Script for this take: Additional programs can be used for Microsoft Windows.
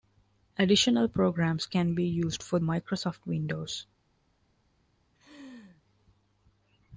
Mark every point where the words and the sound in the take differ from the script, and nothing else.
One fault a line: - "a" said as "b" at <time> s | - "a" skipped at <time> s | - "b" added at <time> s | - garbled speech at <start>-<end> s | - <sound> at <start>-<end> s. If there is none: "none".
- laugh at 5.1-5.8 s